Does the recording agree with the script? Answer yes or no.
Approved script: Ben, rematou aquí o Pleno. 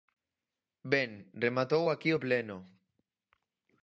yes